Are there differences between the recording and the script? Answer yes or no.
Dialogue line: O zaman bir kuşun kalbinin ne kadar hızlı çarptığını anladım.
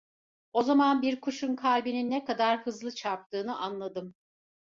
no